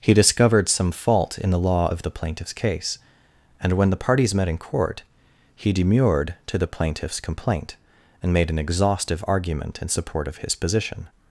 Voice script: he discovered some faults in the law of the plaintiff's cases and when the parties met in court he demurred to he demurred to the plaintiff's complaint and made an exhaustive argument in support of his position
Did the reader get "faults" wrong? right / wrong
wrong